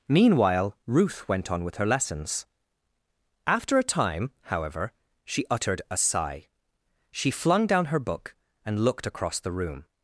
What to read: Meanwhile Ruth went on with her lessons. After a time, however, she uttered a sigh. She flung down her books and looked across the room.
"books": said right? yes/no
no